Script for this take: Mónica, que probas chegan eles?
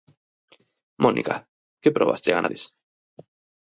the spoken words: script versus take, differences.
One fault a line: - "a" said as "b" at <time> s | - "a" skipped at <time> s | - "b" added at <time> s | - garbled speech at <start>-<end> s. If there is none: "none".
none